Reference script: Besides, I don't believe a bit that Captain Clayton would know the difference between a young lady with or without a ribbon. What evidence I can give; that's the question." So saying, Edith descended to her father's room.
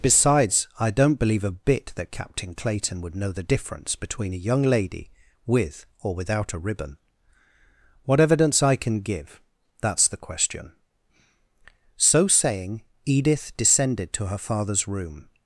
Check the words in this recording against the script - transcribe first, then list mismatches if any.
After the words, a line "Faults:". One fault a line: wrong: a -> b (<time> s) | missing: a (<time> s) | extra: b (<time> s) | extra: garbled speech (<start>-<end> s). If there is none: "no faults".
Besides, I don't believe a bit that Captain Clayton would know the difference between a young lady with or without a ribbon. What evidence I can give; that's the question." So saying, Edith descended to her father's room.
Faults:
no faults